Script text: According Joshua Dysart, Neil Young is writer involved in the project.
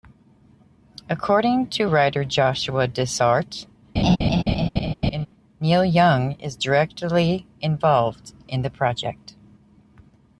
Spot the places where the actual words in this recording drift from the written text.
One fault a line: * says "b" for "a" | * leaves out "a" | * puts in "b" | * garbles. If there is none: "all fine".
* puts in "to writer"
* says "directly" for "writer"